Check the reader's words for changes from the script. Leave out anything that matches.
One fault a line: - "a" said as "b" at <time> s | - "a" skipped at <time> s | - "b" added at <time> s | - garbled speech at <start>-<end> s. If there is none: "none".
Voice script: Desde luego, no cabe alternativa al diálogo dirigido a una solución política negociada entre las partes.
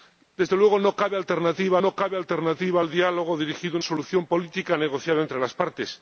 - "no cabe alternativa" added at 1.8 s
- "una" skipped at 3.8 s